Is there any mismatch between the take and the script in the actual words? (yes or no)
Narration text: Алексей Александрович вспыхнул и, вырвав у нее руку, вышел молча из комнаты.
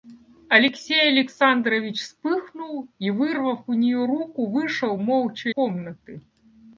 yes